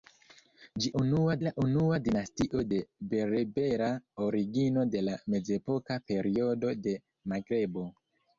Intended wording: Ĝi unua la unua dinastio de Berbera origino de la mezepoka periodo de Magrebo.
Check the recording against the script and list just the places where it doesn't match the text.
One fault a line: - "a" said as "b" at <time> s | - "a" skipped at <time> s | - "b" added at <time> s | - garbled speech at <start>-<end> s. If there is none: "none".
none